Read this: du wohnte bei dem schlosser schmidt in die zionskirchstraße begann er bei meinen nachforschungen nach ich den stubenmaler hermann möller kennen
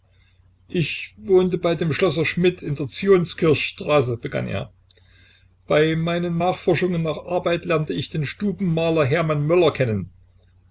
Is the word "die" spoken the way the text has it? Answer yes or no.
no